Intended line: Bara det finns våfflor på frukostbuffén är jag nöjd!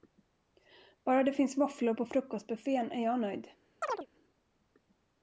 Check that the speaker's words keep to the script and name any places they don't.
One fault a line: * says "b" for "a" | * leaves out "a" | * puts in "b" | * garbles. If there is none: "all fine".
all fine